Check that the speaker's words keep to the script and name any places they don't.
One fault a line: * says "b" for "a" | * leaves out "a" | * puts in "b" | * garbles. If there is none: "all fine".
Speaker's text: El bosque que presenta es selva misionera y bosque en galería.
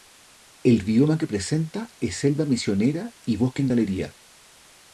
* says "bioma" for "bosque"